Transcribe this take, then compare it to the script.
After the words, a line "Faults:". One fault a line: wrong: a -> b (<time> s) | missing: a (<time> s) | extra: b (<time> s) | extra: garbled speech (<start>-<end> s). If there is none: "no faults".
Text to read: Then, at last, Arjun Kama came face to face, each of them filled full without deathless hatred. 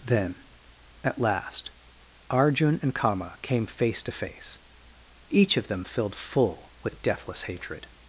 Then, at last, Arjun and Kama came face to face, each of them filled full with deathless hatred.
Faults:
extra: and (2.8 s)
wrong: without -> with (6.8 s)